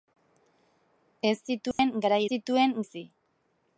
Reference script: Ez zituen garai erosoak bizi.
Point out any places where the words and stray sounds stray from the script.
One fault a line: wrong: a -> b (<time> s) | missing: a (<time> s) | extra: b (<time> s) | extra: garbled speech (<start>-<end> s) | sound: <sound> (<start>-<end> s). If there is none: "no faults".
sound: dropout (1.7-1.8 s)
wrong: erosoak -> zituen (2.3 s)